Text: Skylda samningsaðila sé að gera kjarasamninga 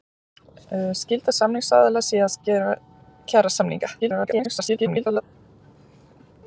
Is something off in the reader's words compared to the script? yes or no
yes